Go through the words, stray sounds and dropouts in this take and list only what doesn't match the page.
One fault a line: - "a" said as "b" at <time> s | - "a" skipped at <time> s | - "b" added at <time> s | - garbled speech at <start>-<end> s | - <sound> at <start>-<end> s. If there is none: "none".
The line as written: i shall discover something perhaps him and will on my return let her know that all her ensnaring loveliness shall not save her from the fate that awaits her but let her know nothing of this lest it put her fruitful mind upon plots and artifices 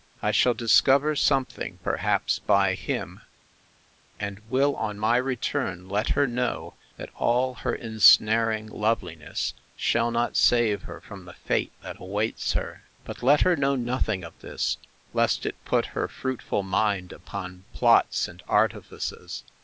- "by" added at 2.4 s